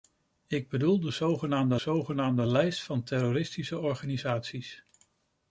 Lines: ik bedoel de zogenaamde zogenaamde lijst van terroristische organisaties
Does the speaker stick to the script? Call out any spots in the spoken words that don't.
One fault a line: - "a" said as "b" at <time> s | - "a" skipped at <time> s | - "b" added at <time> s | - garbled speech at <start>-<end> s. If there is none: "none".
none